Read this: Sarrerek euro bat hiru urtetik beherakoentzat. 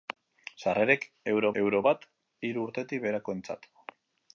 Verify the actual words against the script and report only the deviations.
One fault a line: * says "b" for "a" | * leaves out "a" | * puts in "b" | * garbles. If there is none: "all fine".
* puts in "euro"